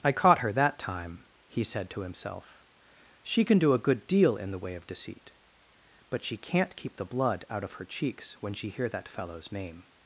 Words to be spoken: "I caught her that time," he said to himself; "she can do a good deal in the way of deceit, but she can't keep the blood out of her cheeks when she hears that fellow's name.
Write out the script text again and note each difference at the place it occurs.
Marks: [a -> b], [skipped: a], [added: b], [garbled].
"I caught her that time," he said to himself; "she can do a good deal in the way of deceit, but she can't keep the blood out of her cheeks when she [hears -> hear] that fellow's name.